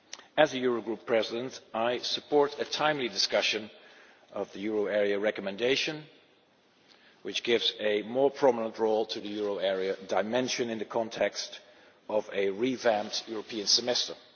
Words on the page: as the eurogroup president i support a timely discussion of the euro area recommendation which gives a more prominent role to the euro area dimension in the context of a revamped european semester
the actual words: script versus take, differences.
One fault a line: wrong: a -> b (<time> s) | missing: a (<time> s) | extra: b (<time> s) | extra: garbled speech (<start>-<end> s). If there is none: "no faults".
no faults